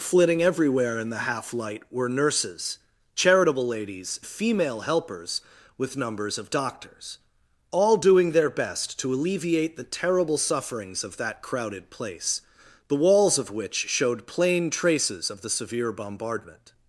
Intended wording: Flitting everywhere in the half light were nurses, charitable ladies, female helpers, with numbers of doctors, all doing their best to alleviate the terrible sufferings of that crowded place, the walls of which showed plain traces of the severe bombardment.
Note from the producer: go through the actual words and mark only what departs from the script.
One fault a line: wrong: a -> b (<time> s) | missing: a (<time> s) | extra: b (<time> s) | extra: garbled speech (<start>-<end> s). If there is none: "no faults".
no faults